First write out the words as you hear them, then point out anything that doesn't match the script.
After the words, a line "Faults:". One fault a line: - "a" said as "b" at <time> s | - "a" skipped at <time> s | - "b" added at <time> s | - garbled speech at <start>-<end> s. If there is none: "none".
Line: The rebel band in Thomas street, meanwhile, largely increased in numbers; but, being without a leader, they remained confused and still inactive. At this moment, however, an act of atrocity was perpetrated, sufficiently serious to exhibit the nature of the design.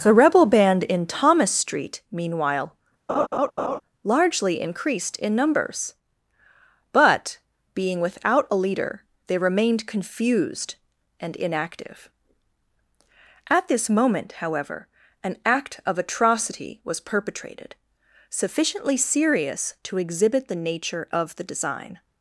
The rebel band in Thomas street, meanwhile, largely increased in numbers; but, being without a leader, they remained confused and inactive. At this moment, however, an act of atrocity was perpetrated, sufficiently serious to exhibit the nature of the design.
Faults:
- "still" skipped at 11.4 s